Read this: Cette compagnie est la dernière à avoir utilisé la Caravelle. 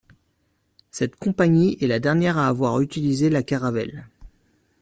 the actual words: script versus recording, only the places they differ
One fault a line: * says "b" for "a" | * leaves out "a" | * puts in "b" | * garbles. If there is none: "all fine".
all fine